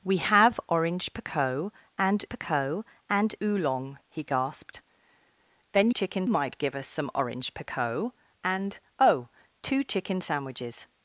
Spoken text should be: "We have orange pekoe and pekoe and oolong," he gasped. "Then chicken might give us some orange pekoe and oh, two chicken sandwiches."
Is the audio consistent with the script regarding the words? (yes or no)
yes